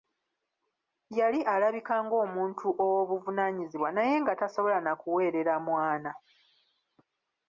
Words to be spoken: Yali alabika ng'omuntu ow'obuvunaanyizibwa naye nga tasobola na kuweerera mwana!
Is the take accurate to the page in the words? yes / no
yes